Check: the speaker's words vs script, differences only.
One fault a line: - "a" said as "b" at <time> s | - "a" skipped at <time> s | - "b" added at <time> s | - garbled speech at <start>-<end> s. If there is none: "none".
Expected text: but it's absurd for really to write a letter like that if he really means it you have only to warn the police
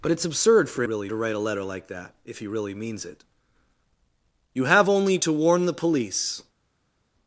none